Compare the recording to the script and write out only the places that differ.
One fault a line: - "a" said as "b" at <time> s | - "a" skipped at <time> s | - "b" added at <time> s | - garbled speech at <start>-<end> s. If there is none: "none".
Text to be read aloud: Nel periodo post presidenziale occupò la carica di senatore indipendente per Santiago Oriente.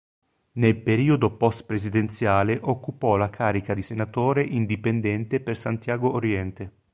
none